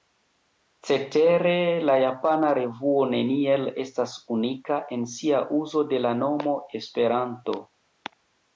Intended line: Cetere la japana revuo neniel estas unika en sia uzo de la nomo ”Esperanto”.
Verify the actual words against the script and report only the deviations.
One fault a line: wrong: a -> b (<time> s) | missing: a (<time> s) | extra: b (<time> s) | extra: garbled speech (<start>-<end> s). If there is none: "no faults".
no faults